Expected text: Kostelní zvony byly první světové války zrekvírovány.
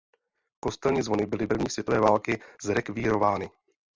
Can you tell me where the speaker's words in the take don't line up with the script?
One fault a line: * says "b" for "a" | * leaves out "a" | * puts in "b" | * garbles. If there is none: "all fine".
all fine